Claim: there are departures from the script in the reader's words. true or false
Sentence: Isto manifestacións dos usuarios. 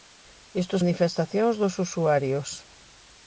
false